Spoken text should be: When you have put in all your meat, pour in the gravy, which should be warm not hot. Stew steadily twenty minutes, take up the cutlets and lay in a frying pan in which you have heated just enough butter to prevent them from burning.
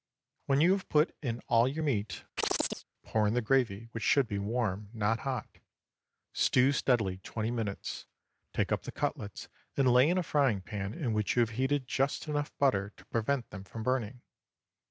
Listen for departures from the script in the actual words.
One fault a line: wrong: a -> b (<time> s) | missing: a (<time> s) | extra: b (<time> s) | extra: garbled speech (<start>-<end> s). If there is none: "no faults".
no faults